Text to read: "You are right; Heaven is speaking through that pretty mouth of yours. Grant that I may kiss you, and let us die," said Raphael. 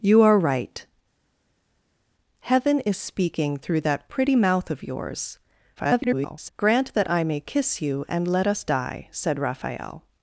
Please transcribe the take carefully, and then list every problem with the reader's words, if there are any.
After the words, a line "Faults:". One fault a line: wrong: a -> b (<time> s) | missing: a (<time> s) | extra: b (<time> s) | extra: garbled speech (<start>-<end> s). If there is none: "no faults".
"You are right; Heaven is speaking through that pretty mouth of yours. [garbled] Grant that I may kiss you, and let us die," said Raphael.
Faults:
extra: garbled speech (5.8-6.5 s)